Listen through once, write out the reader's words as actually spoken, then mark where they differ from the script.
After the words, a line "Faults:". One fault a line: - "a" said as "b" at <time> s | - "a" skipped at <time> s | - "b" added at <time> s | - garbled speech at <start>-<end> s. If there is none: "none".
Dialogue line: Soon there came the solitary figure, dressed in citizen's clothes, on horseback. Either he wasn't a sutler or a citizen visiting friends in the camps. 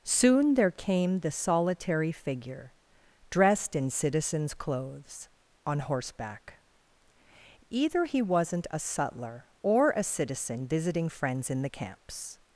Soon there came the solitary figure, dressed in citizen's clothes, on horseback. Either he wasn't a sutler or a citizen visiting friends in the camps.
Faults:
none